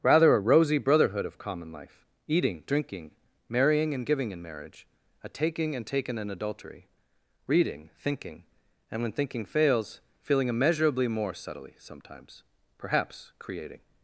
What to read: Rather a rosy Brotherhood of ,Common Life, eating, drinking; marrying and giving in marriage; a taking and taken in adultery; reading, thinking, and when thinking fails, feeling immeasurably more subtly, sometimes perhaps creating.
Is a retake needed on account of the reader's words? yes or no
no